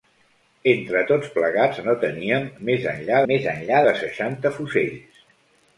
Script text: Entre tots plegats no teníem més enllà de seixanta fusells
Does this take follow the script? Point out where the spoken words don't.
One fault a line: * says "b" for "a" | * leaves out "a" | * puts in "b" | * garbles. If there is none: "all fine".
* puts in "més enllà"